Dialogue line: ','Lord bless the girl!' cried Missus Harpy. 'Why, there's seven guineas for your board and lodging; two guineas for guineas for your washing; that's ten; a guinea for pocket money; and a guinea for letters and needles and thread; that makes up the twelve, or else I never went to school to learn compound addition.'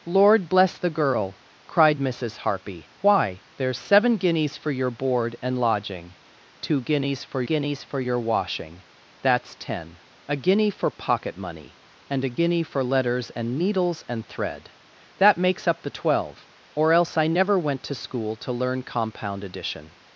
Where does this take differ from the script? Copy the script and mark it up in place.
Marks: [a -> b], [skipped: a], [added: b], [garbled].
','Lord bless the girl!' cried Missus Harpy. 'Why, there's seven guineas for your board and lodging; two guineas for guineas for your washing; that's ten; a guinea for pocket money; and a guinea for letters and needles and thread; that makes up the twelve, or else I never went to school to learn compound addition.'